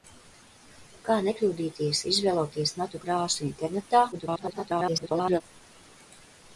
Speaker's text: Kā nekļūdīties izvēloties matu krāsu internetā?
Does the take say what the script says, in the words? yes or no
no